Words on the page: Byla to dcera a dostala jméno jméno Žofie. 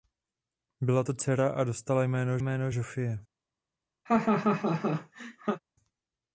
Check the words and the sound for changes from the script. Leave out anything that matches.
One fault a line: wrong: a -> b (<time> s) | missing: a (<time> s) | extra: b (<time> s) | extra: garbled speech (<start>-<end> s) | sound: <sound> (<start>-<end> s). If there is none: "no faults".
sound: laugh (4.1-5.6 s)